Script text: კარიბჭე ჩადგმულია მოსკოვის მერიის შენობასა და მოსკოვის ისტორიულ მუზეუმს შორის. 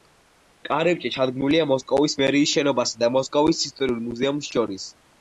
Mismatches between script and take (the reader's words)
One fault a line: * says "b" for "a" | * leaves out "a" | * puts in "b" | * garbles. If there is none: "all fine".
all fine